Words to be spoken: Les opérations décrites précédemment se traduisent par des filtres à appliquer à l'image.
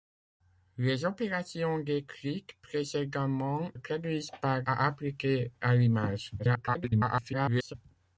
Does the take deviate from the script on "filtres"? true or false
true